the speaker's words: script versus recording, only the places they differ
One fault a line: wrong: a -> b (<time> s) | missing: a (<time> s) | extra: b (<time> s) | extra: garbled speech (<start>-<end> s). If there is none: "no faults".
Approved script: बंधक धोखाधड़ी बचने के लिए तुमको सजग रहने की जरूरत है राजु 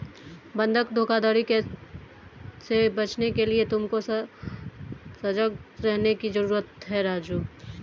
extra: से (2.6 s)